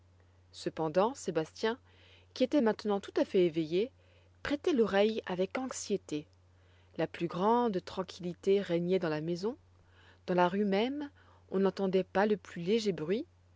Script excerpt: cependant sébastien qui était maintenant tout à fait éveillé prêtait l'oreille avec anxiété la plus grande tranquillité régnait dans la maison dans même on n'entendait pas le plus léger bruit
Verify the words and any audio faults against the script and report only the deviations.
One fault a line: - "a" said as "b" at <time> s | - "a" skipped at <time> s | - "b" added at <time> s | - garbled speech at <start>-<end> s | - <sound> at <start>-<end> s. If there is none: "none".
- "la rue" added at 10.4 s